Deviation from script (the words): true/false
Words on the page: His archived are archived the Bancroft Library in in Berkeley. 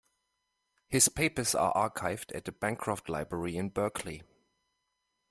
true